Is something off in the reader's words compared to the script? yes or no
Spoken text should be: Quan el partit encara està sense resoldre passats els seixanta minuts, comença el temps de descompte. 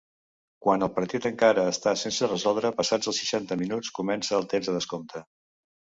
no